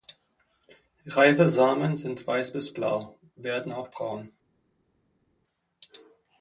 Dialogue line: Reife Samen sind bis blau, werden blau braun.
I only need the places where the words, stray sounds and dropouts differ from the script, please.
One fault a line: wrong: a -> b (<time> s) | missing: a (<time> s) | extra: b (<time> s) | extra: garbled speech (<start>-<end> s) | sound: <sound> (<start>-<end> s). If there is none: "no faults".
extra: weiß (2.2 s)
wrong: blau -> auch (3.7 s)